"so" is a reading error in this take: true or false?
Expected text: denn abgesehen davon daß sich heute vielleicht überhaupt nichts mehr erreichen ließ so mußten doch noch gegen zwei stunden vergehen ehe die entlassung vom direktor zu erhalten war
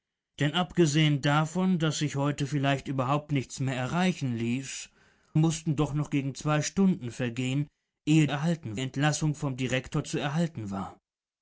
true